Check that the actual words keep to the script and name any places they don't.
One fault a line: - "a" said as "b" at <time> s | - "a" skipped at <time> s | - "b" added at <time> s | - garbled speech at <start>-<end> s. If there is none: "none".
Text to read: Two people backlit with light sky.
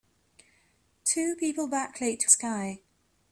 - "with light" skipped at 2.3 s